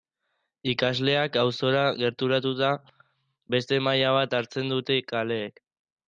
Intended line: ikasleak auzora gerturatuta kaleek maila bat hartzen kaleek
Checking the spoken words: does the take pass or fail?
fail